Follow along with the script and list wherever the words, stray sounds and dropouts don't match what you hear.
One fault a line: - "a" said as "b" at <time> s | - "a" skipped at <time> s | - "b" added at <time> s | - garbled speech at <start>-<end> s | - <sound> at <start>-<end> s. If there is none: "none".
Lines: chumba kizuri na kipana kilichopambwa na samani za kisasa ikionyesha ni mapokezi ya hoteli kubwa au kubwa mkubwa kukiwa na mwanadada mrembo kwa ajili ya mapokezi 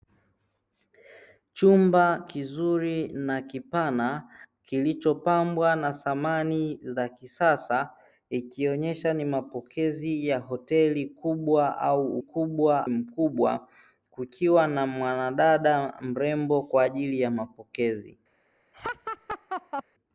- laugh at 18.7-19.8 s